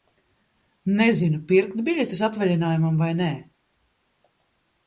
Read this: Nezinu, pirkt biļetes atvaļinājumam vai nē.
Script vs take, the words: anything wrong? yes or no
no